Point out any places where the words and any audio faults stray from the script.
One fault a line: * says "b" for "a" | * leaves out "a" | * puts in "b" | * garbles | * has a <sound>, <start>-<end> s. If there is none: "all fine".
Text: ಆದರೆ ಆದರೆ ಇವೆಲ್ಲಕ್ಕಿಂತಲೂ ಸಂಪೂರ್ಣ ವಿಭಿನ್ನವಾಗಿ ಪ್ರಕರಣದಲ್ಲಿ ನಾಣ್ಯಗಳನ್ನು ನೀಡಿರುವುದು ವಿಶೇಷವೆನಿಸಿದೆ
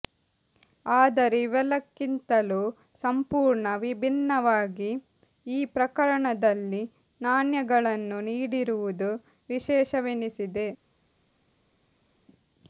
* leaves out "ಆದರೆ"
* puts in "ಈ"